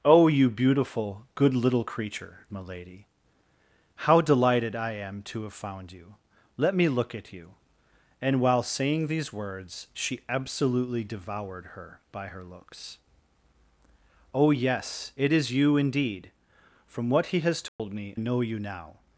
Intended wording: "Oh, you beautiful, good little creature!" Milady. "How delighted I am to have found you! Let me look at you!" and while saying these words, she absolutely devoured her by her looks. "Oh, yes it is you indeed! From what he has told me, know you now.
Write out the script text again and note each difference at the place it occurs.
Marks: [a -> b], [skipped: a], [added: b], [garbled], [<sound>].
"Oh, you beautiful, good little creature!" Milady. "How delighted I am to have found you! Let me look at you!" and while saying these words, she absolutely devoured her by her looks. "Oh, yes it is you indeed! From what he has told [dropout] me, know you now.